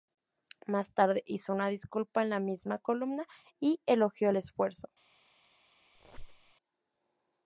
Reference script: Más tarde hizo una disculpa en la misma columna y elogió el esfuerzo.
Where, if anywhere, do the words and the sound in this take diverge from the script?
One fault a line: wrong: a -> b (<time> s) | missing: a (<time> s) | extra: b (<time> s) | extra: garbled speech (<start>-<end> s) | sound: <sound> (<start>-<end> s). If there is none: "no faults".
sound: squeak (5.9-6.5 s)